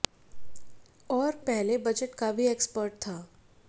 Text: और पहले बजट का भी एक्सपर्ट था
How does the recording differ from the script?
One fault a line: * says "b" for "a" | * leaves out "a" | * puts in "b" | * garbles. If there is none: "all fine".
all fine